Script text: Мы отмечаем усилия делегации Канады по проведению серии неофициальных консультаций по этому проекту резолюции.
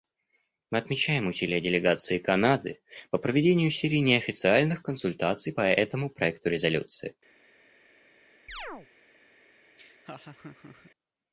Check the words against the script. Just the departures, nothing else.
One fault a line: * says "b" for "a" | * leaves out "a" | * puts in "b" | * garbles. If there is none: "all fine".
all fine